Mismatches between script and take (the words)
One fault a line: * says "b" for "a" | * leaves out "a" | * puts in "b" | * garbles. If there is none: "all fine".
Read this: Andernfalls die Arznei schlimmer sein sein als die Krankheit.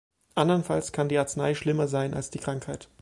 * puts in "kann"
* leaves out "sein"